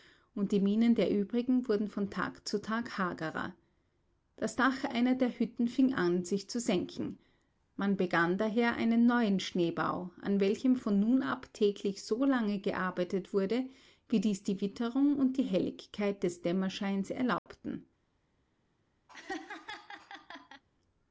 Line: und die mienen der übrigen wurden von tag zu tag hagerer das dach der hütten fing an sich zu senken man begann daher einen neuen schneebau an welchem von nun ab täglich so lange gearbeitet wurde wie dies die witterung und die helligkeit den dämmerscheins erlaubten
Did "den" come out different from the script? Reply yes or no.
yes